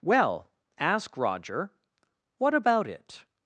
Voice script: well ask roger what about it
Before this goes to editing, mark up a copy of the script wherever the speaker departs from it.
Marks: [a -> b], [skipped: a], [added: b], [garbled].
well ask roger what about it